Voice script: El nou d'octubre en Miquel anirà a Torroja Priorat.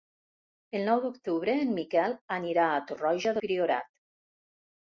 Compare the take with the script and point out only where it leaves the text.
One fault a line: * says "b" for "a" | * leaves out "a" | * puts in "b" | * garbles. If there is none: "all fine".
all fine